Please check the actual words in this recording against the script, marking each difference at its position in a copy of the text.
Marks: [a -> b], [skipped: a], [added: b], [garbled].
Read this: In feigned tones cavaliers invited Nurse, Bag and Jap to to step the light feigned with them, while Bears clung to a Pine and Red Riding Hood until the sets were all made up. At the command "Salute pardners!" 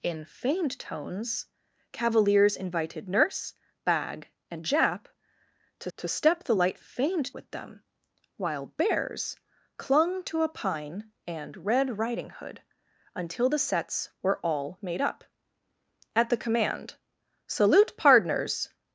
In feigned tones cavaliers invited Nurse, Bag and Jap to to step the light feigned with them, while Bears clung to a Pine and Red Riding Hood until the sets were all made up. At the command "Salute pardners!"